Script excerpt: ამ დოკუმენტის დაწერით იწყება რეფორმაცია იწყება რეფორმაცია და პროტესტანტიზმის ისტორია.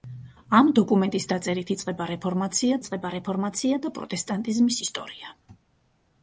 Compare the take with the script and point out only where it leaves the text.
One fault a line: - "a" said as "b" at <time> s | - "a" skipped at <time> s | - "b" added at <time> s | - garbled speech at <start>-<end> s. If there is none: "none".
none